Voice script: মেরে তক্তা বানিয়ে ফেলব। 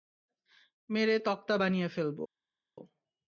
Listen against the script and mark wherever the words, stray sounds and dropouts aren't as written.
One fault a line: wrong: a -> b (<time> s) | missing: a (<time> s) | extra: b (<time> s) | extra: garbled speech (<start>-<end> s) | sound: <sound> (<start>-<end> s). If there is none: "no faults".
no faults